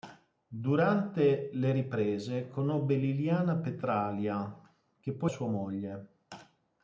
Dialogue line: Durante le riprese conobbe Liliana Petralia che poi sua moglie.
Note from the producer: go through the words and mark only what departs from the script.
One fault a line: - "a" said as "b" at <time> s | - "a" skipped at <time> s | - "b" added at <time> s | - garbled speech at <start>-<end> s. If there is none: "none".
none